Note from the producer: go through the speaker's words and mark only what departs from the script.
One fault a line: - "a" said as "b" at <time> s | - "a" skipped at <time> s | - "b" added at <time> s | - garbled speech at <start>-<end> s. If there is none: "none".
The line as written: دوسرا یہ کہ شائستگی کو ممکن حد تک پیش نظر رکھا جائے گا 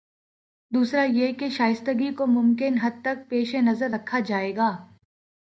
none